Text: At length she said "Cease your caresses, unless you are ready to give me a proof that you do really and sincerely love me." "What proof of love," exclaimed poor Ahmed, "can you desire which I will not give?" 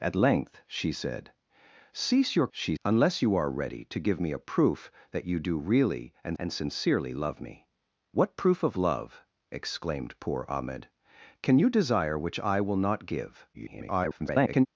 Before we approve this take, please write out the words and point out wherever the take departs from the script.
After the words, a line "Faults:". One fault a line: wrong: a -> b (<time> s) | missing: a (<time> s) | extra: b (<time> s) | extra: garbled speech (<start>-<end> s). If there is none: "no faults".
At length she said "Cease your she, unless you are ready to give me a proof that you do really and and sincerely love me." "What proof of love," exclaimed poor Ahmed, "can you desire which I will not give?" [garbled]
Faults:
wrong: caresses -> she (2.5 s)
extra: and (6.4 s)
extra: garbled speech (13.5-14.7 s)